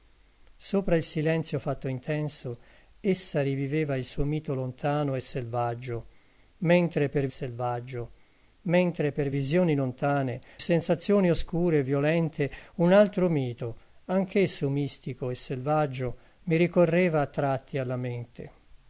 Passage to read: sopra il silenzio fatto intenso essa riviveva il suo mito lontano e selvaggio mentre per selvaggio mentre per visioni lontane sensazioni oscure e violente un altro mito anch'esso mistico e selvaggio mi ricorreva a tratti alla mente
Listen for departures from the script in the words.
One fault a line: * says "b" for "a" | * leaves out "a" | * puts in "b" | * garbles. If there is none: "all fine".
all fine